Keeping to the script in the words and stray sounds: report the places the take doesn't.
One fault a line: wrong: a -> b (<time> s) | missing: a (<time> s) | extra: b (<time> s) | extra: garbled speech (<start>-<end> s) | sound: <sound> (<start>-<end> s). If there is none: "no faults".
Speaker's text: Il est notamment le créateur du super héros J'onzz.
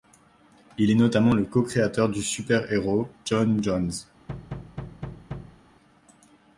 extra: co (1.4 s)
extra: J'onn (3.2 s)
sound: thud (4.3-5.6 s)